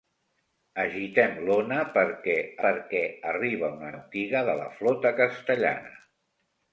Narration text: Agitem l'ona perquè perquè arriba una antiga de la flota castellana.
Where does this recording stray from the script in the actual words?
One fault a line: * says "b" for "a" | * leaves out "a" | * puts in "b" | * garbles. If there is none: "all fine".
all fine